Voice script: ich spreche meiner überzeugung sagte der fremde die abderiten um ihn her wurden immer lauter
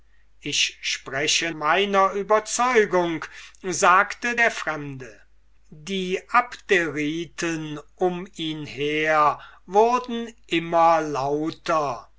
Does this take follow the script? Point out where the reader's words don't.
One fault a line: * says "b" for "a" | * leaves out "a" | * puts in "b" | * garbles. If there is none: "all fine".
all fine